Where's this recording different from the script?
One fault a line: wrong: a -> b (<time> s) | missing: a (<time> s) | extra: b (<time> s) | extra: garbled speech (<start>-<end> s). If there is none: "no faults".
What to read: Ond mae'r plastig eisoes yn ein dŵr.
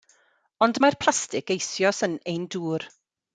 no faults